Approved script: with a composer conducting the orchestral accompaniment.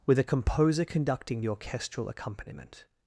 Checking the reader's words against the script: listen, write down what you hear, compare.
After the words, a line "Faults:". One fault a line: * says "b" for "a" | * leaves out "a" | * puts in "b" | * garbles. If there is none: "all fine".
with a composer conducting the orchestral accompaniment.
Faults:
all fine